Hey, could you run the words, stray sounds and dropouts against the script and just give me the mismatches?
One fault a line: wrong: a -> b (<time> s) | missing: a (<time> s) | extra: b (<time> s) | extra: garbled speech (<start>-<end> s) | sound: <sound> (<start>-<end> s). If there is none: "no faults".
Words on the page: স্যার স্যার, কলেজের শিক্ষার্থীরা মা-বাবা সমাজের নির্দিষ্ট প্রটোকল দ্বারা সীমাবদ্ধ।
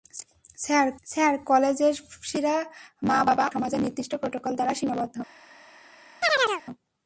sound: chirp (6.2-6.6 s)